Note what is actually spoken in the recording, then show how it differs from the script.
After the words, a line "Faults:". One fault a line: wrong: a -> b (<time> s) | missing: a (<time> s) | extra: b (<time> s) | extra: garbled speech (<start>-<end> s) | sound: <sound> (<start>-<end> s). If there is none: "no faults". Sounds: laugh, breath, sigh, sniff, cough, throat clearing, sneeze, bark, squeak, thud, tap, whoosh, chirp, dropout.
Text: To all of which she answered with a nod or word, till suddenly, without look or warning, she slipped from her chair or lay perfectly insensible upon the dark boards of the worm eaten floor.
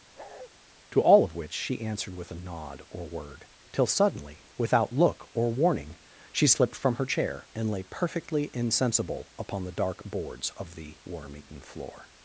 To all of which she answered with a nod or word, till suddenly, without look or warning, she slipped from her chair and lay perfectly insensible upon the dark boards of the worm eaten floor.
Faults:
sound: bark (0.2-0.5 s)
wrong: or -> and (7.5 s)